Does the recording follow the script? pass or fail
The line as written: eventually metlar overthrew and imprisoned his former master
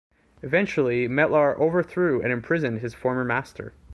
pass